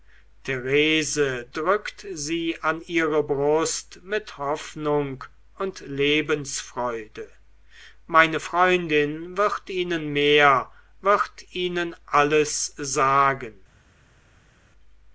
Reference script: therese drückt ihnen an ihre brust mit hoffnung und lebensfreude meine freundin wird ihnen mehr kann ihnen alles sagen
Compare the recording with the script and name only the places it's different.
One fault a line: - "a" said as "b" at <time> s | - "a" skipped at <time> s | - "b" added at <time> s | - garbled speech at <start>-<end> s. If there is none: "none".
- "ihnen" said as "sie" at 2.1 s
- "kann" said as "wird" at 11.0 s